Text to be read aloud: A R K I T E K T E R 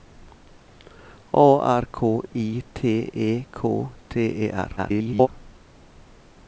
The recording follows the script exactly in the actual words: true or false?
false